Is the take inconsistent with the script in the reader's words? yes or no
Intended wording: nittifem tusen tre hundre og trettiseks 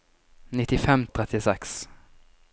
yes